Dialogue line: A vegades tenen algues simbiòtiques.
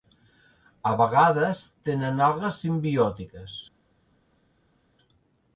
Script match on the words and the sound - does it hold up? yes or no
yes